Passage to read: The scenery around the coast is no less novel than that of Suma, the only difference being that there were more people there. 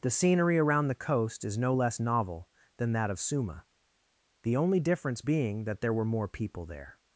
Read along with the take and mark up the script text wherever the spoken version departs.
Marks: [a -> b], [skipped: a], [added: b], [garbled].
The scenery around the coast is no less novel than that of Suma, the only difference being that there were more people there.